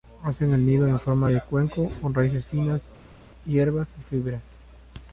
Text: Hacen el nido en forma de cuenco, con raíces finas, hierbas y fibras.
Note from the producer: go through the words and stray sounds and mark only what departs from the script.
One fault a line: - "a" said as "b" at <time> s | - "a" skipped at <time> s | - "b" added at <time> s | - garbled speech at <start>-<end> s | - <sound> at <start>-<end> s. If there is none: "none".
none